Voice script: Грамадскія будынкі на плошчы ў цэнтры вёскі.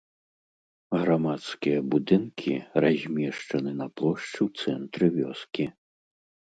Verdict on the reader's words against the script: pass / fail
fail